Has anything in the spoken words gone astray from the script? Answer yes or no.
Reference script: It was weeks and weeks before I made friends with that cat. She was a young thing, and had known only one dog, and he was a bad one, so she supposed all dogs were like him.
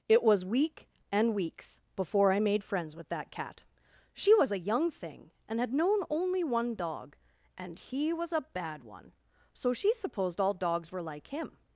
yes